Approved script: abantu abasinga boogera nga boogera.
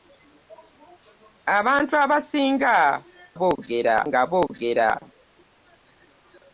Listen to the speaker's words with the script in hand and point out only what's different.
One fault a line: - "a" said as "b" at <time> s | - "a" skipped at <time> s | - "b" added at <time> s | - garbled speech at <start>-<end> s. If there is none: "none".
none